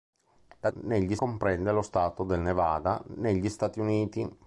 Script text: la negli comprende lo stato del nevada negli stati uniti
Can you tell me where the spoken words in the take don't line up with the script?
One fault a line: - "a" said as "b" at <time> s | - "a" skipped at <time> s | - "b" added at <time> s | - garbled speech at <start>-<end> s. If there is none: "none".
none